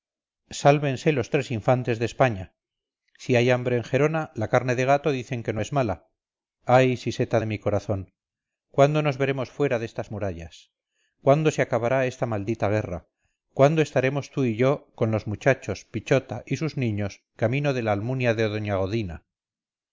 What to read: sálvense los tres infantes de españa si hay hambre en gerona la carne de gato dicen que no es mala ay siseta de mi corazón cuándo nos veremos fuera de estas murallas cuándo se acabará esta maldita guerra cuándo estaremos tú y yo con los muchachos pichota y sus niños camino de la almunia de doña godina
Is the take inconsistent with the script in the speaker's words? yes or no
no